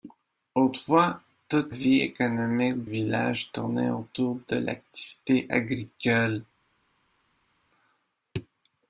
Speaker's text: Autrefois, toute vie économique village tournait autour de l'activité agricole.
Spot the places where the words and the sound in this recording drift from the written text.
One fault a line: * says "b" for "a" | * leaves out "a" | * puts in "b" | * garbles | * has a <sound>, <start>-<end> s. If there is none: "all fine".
all fine